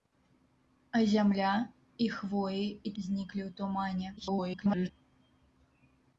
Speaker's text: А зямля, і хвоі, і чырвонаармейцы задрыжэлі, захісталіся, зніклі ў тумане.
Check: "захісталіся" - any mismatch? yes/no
yes